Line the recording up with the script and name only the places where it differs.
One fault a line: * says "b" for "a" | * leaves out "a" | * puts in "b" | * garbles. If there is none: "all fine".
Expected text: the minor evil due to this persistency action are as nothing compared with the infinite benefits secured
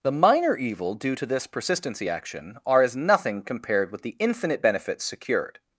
all fine